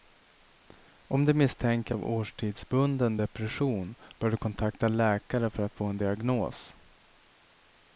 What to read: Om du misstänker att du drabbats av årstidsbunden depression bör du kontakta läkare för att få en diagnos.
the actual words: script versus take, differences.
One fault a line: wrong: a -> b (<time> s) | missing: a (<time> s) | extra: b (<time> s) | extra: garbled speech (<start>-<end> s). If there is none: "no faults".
missing: att du drabbats (1.9 s)